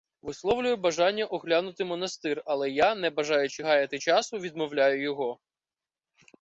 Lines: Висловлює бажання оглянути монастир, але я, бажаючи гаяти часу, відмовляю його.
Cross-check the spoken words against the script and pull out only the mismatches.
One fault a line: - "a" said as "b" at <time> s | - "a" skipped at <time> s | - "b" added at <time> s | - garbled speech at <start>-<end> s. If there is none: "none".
- "не" added at 3.0 s